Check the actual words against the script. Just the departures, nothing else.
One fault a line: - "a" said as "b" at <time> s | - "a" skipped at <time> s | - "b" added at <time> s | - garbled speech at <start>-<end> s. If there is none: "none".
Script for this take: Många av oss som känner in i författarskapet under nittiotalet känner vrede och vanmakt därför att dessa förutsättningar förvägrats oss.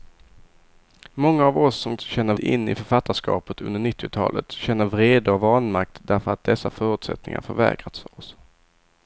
none